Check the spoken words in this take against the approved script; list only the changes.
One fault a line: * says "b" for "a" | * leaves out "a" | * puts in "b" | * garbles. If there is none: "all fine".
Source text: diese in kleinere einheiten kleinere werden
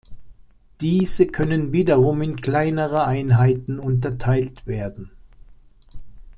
* puts in "können wiederum"
* says "unterteilt" for "kleinere"